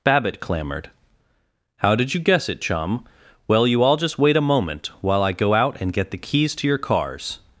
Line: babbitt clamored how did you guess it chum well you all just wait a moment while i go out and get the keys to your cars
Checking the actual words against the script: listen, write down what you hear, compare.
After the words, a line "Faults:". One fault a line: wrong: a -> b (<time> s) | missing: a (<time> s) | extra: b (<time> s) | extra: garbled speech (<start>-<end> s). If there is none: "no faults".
babbitt clamored how did you guess it chum well you all just wait a moment while i go out and get the keys to your cars
Faults:
no faults